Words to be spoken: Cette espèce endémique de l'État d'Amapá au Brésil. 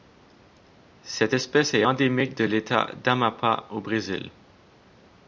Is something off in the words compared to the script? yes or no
yes